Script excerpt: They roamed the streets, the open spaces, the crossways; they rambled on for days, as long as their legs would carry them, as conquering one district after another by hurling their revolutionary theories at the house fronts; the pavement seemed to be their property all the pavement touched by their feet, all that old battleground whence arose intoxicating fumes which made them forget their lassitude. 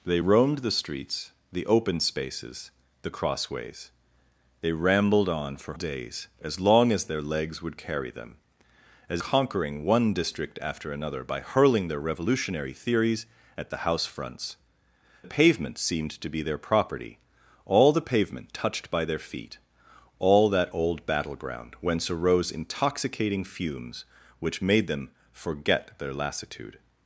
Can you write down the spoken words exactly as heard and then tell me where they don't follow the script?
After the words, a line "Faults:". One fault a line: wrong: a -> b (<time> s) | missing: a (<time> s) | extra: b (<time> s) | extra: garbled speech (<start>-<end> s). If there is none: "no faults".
They roamed the streets, the open spaces, the crossways; they rambled on for days, as long as their legs would carry them, as conquering one district after another by hurling their revolutionary theories at the house fronts; the pavement seemed to be their property all the pavement touched by their feet, all that old battleground whence arose intoxicating fumes which made them forget their lassitude.
Faults:
no faults